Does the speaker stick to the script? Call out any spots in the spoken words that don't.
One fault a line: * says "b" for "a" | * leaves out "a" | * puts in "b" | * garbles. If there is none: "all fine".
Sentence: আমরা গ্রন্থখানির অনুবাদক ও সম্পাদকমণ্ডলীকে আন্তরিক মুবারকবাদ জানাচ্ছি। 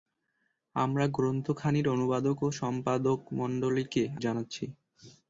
* leaves out "আন্তরিক মুবারকবাদ"